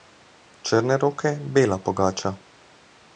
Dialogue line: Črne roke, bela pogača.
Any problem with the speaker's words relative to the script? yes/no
no